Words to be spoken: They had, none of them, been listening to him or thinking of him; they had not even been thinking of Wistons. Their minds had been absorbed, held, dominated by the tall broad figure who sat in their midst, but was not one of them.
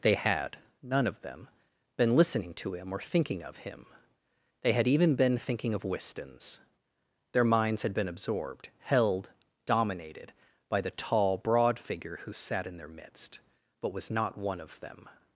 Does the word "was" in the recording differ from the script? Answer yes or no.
no